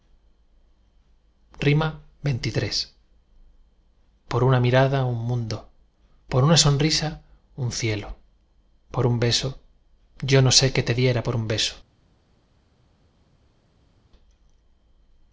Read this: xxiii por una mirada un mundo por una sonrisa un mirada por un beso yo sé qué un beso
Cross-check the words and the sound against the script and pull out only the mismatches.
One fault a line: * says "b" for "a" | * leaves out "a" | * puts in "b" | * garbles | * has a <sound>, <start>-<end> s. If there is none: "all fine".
* says "cielo" for "mirada"
* puts in "no"
* puts in "te diera por"